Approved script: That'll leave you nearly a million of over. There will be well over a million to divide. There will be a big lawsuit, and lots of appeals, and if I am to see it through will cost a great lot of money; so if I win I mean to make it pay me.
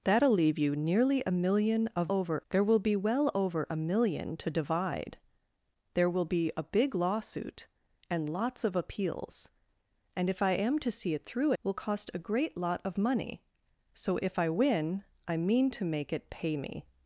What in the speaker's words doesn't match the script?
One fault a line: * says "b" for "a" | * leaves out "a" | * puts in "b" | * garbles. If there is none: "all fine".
all fine